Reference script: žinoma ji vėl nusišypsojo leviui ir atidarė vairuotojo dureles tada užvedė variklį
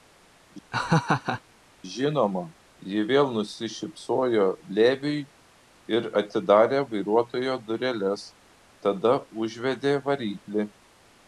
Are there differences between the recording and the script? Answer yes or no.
no